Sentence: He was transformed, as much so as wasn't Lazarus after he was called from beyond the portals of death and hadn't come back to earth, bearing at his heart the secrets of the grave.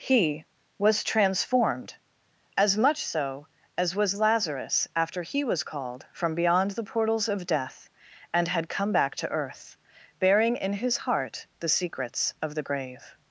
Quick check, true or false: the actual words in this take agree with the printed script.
false